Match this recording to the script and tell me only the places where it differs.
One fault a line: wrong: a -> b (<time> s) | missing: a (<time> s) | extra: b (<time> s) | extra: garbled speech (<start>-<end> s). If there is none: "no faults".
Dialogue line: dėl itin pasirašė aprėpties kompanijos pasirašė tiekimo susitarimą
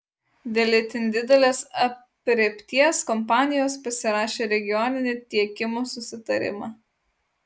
wrong: pasirašė -> didelės (1.1 s)
extra: regioninį (4.5 s)